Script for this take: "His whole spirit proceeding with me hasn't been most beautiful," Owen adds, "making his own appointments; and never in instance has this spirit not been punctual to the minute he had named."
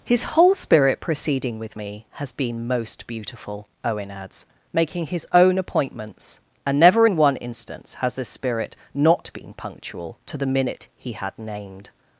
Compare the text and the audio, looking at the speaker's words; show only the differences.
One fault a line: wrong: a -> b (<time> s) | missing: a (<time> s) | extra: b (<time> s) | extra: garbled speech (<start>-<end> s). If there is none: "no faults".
wrong: hasn't -> has (2.1 s)
extra: one (7.2 s)